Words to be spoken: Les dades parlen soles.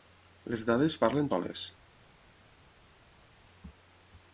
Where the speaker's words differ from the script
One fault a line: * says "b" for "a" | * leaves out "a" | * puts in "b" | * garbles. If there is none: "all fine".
all fine